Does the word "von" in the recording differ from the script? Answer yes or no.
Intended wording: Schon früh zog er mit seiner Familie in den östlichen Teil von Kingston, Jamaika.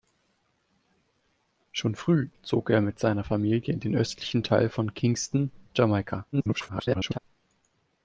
no